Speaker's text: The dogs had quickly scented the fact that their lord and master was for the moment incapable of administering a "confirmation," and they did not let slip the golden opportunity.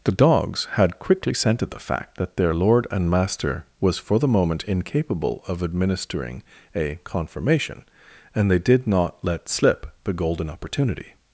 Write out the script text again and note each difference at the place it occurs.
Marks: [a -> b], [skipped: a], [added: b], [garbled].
The dogs had quickly scented the fact that their lord and master was for the moment incapable of administering a "confirmation," and they did not let slip the golden opportunity.